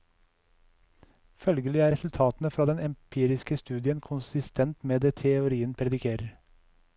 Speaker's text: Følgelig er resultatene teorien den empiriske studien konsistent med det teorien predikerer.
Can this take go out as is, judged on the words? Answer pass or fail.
fail